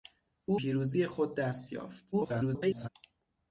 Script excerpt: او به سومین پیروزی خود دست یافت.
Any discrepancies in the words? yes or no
yes